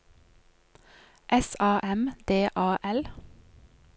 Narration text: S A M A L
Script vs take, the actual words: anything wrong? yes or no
yes